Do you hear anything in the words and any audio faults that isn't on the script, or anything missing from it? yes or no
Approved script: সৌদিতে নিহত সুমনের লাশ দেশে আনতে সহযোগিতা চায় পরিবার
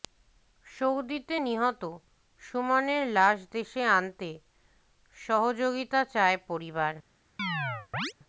yes